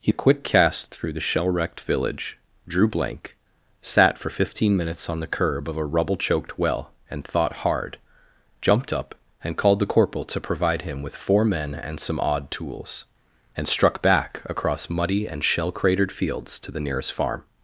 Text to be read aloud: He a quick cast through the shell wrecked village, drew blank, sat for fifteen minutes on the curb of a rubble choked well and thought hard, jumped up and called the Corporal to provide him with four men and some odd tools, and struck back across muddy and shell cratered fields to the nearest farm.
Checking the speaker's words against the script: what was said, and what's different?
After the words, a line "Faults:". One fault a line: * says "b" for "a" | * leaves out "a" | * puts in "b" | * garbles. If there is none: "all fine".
He a quick cast through the shell wrecked village, drew blank, sat for fifteen minutes on the curb of a rubble choked well and thought hard, jumped up and called the Corporal to provide him with four men and some odd tools, and struck back across muddy and shell cratered fields to the nearest farm.
Faults:
all fine